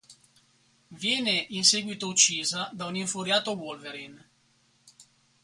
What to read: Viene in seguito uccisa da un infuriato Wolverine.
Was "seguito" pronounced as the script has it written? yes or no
yes